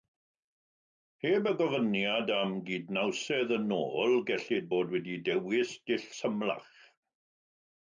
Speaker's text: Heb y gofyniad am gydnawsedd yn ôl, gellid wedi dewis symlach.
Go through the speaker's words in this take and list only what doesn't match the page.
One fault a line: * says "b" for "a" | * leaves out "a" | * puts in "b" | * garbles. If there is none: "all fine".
* puts in "bod"
* puts in "dull"